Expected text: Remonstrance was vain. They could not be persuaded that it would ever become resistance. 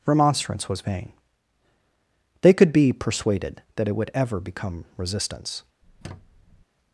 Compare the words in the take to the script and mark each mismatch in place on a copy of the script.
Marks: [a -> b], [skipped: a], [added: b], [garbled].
Remonstrance was vain. They could [skipped: not] be persuaded that it would ever become resistance.